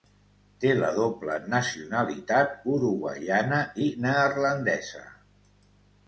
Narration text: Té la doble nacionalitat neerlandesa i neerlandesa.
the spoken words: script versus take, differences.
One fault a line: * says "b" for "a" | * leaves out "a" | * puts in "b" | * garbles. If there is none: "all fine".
* says "uruguaiana" for "neerlandesa"